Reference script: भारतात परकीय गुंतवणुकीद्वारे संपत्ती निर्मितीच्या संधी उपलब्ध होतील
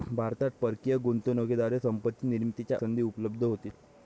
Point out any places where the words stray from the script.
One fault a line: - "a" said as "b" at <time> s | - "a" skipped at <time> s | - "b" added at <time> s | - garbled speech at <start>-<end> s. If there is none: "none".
none